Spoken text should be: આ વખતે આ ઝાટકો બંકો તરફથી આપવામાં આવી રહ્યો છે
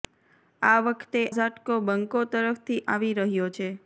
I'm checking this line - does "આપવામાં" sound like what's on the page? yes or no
no